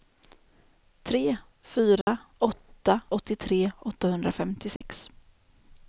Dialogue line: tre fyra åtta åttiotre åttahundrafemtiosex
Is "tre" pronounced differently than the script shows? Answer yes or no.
no